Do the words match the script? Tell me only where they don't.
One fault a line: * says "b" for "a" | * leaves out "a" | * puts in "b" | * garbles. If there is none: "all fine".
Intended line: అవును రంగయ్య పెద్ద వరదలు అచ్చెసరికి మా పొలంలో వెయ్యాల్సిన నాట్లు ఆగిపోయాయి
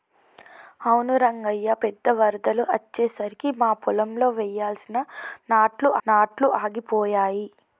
* puts in "నాట్లు"